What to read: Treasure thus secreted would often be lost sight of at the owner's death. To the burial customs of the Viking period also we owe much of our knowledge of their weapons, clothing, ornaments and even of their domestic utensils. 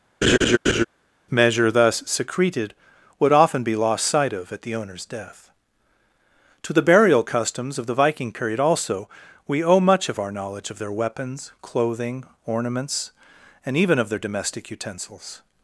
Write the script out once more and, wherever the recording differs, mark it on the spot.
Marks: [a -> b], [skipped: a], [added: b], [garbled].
[Treasure -> Measure] thus secreted would often be lost sight of at the owner's death. To the burial customs of the Viking period also we owe much of our knowledge of their weapons, clothing, ornaments and even of their domestic utensils.